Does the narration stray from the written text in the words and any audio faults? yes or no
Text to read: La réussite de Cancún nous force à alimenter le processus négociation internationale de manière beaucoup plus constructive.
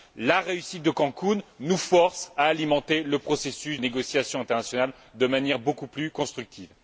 no